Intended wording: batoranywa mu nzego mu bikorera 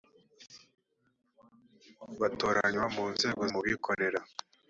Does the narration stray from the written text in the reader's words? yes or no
no